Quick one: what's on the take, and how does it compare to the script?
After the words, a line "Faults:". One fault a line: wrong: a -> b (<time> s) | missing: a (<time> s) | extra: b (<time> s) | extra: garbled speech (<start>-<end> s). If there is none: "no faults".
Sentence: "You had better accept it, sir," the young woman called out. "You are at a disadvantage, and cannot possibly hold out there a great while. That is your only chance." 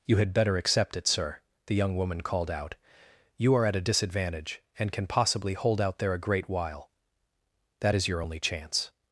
"You had better accept it, sir," the young woman called out. "You are at a disadvantage, and can possibly hold out there a great while. That is your only chance."
Faults:
wrong: cannot -> can (4.9 s)